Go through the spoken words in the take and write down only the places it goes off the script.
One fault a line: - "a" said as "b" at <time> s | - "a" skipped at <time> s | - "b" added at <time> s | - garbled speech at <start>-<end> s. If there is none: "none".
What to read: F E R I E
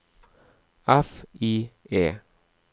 - "E R" skipped at 1.2 s